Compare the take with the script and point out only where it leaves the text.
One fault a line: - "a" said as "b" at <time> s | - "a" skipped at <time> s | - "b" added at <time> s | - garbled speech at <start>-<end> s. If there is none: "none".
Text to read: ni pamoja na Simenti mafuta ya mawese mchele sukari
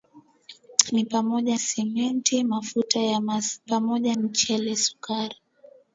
- "na" skipped at 1.6 s
- "mawese" said as "pamoja" at 3.6 s